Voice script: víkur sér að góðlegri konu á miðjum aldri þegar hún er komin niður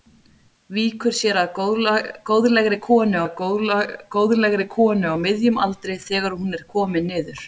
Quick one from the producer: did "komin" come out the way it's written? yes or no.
yes